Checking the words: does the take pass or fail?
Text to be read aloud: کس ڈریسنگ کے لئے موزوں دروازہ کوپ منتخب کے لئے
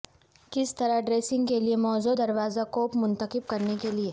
fail